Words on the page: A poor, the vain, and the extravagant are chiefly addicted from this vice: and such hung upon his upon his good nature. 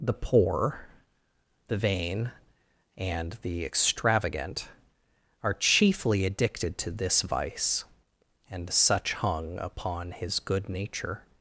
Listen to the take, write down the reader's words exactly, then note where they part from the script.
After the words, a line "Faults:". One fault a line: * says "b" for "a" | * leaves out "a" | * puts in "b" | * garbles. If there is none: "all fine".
The poor, the vain, and the extravagant are chiefly addicted to this vice: and such hung upon his good nature.
Faults:
* says "The" for "A"
* says "to" for "from"
* leaves out "upon his"